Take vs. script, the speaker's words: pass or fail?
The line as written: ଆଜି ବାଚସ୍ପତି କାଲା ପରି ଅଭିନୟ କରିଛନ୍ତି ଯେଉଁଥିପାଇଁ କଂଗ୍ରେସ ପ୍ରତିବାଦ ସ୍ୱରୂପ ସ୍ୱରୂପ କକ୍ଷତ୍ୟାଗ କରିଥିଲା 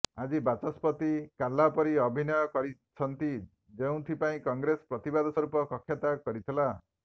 fail